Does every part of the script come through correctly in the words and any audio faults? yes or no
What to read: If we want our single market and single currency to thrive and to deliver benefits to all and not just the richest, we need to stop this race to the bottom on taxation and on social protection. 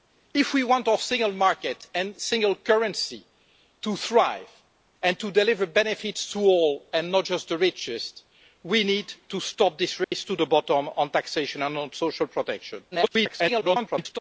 no